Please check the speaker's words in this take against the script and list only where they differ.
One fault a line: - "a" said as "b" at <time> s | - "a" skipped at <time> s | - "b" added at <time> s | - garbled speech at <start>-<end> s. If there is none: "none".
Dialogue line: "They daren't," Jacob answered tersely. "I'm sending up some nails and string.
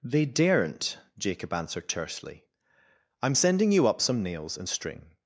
- "you" added at 3.7 s